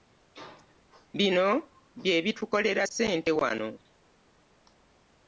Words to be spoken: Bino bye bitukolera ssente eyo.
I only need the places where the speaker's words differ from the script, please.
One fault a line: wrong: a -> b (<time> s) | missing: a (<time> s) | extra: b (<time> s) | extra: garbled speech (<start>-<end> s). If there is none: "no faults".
wrong: eyo -> wano (3.4 s)